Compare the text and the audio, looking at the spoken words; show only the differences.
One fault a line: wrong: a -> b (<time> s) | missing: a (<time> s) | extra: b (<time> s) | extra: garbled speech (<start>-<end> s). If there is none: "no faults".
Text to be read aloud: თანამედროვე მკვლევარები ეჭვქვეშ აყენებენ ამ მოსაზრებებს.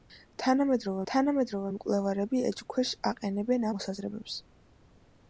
extra: თანამედროვე (1.1 s)
missing: ამ (3.7 s)